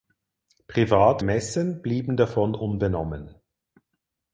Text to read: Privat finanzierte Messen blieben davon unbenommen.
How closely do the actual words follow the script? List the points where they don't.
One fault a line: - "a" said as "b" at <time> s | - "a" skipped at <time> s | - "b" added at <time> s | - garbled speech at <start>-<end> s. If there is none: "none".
- "finanzierte" skipped at 1.2 s